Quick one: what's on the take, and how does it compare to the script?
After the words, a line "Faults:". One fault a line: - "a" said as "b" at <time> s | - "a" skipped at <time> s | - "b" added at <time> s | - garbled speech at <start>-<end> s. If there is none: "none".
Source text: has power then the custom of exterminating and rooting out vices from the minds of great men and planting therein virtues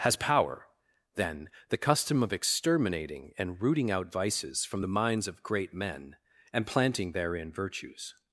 has power then the custom of exterminating and rooting out vices from the minds of great men and planting therein virtues
Faults:
none